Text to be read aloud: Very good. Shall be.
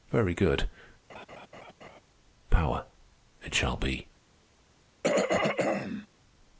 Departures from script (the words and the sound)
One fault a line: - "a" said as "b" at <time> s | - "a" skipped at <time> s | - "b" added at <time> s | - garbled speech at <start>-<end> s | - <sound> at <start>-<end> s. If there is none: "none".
- laugh at 1.1-2.0 s
- "Power it" added at 2.5 s
- throat clearing at 5.0-6.1 s